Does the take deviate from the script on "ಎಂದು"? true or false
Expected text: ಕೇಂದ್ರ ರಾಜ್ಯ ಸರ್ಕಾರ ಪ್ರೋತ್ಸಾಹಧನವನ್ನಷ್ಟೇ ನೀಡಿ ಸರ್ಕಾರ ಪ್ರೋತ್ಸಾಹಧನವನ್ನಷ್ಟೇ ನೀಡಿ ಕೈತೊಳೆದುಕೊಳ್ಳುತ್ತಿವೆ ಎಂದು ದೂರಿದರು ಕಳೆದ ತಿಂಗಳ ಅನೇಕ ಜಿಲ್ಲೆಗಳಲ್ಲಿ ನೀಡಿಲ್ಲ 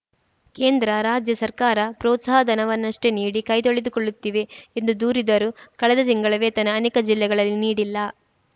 false